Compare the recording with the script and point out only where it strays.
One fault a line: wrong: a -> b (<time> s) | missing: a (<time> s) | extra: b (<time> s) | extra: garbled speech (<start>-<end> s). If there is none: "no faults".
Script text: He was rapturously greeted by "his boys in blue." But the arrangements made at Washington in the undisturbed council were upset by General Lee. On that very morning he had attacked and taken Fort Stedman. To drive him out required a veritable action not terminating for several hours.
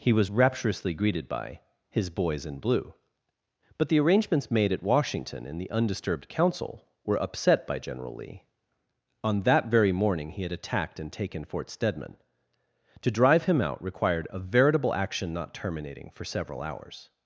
no faults